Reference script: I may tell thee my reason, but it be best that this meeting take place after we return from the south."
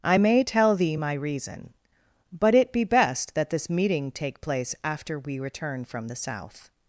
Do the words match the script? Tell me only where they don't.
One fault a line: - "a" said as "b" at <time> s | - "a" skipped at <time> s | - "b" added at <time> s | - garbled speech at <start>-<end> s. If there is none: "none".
none